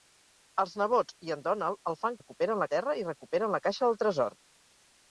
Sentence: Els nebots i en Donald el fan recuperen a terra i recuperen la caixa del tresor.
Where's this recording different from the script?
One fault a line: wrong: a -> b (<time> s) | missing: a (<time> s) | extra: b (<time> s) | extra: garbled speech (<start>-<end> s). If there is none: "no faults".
no faults